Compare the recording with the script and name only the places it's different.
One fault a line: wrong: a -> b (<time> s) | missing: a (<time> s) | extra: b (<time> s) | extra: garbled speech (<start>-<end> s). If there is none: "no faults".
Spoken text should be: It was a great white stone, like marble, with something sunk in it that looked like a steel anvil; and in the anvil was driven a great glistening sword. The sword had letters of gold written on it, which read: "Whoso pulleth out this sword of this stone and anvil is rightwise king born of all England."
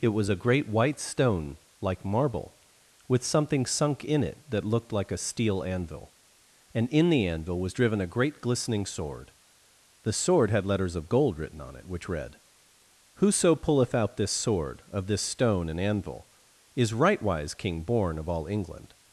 no faults